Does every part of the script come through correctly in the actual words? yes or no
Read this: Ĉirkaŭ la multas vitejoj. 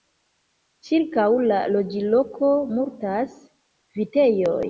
no